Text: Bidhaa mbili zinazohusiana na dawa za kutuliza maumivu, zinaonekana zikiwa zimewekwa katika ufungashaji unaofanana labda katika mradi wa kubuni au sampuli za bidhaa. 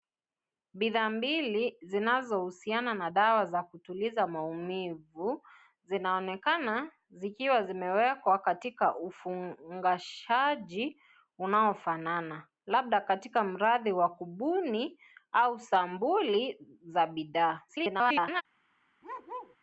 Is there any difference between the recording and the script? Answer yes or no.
yes